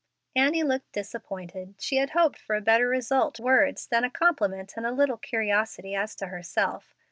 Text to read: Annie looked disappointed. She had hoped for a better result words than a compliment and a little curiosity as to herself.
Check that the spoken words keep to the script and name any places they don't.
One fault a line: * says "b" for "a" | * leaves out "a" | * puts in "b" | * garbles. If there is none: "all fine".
all fine